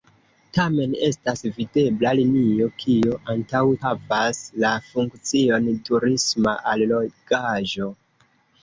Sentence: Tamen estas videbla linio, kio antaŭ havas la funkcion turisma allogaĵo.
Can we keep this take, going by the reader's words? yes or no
yes